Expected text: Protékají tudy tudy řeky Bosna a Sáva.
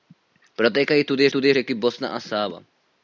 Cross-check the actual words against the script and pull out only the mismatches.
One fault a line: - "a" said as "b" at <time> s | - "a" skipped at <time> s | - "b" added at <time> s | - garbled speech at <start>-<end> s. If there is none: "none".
none